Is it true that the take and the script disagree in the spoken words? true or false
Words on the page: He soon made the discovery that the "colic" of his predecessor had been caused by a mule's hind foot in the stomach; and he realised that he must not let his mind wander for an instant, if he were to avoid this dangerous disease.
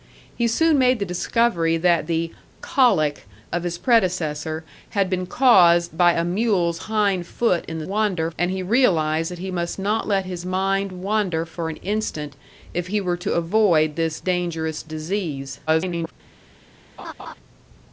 true